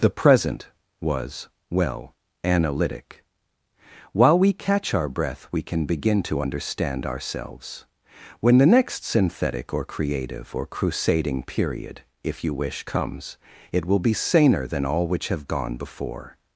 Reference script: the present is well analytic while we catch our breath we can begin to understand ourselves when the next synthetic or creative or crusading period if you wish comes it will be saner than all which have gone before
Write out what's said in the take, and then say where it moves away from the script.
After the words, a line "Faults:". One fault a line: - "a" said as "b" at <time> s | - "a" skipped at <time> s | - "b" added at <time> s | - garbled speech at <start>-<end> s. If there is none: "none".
the present was well analytic while we catch our breath we can begin to understand ourselves when the next synthetic or creative or crusading period if you wish comes it will be saner than all which have gone before
Faults:
- "is" said as "was" at 1.0 s